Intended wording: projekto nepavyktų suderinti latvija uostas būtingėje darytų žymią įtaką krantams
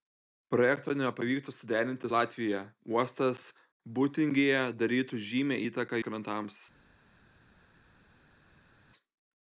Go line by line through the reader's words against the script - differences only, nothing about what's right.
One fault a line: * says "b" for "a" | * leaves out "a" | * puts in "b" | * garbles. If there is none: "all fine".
all fine